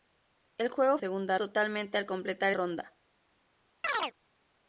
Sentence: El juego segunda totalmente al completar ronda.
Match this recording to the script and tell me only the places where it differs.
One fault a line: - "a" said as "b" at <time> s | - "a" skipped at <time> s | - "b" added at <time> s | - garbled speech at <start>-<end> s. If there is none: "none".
none